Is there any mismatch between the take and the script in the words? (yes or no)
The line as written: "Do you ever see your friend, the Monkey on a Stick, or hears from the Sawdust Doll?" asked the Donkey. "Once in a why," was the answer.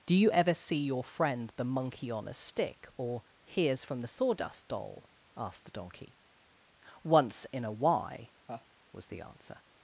no